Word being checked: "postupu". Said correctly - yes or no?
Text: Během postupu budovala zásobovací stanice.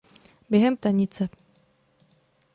no